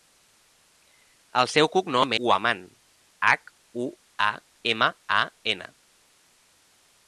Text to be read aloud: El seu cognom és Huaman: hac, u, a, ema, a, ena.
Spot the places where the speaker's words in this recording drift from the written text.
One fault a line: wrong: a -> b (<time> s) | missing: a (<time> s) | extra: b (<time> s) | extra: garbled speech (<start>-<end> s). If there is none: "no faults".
missing: és (2.1 s)